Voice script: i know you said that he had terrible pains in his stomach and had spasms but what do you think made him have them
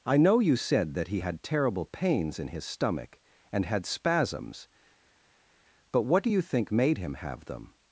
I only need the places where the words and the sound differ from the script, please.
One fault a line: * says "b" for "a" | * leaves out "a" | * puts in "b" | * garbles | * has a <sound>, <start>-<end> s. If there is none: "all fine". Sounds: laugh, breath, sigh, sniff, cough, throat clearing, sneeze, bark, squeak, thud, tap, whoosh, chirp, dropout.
all fine